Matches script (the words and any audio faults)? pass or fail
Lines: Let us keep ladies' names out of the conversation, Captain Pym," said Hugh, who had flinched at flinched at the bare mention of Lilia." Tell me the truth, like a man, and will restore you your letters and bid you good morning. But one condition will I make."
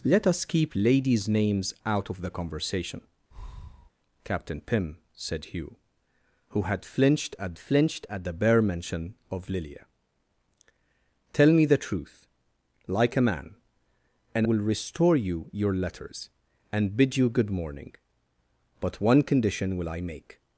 fail